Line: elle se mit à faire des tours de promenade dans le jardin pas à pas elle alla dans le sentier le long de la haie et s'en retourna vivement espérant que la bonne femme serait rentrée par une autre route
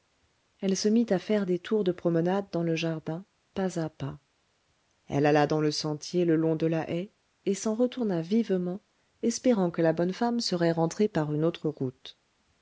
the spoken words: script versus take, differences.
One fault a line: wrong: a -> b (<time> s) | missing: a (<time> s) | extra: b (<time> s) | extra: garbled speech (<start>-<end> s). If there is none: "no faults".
no faults